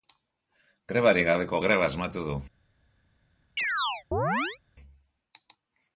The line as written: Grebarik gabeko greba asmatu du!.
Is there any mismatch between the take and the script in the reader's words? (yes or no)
no